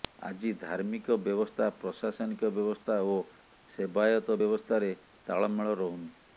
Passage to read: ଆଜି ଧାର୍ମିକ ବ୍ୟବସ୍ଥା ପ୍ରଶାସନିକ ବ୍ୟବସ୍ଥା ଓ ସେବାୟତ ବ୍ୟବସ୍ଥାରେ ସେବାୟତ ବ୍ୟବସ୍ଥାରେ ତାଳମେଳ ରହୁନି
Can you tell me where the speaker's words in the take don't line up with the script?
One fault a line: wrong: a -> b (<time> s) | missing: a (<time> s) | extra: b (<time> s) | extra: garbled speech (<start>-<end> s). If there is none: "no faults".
missing: ସେବାୟତ ବ୍ୟବସ୍ଥାରେ (4.9 s)